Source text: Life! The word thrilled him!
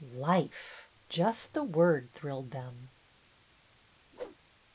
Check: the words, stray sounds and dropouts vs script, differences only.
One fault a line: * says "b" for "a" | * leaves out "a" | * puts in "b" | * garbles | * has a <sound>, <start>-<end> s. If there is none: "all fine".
* puts in "Just"
* says "them" for "him"
* has a whoosh, 4.1-4.4 s